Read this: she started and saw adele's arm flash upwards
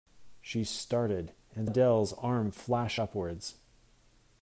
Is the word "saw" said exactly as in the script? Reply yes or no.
no